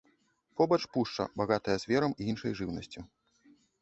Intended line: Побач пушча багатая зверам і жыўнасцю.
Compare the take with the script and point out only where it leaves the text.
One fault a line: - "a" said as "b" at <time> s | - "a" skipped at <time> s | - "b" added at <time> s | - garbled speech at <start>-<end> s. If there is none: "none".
- "іншай" added at 2.3 s